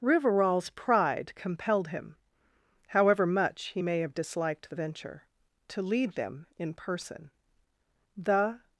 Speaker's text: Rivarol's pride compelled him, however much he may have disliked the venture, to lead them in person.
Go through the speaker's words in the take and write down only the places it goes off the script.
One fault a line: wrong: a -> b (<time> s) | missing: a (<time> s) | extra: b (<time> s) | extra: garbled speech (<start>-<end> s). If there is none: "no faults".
extra: The (8.2 s)